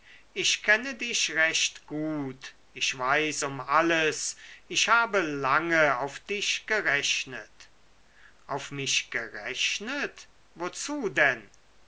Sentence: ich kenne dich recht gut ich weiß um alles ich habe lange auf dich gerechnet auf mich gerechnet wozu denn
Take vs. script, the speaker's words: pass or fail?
pass